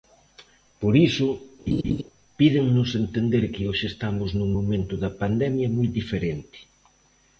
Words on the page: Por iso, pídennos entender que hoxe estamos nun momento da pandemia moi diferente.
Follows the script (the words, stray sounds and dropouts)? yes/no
no